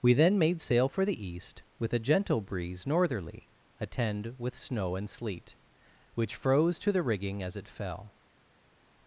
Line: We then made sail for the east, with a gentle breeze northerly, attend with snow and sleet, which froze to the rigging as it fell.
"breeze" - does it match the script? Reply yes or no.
yes